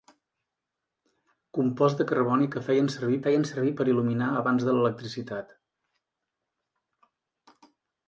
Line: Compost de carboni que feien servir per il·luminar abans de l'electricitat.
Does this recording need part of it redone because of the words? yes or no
yes